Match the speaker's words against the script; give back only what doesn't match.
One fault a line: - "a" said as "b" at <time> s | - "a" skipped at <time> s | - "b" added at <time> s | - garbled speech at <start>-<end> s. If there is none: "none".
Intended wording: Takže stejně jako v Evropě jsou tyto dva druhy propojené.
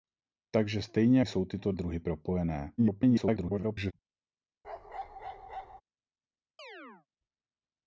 - "jako v Evropě" skipped at 1.2 s
- "dva" skipped at 1.7 s
- garbled speech at 2.8-3.9 s